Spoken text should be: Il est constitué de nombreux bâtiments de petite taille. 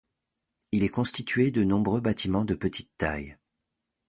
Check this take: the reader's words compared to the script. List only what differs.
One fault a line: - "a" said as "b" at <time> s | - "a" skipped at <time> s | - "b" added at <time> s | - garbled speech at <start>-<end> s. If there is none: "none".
none